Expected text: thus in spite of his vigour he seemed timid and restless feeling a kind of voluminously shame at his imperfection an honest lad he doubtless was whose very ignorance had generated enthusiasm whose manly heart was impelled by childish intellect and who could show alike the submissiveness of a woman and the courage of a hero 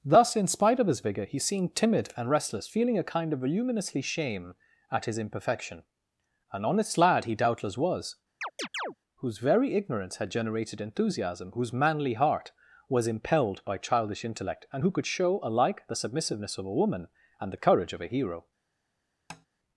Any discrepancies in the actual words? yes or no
no